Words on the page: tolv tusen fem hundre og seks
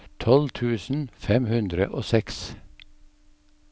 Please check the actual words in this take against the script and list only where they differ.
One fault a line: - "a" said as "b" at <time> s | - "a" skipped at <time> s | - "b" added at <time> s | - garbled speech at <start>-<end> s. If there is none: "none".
none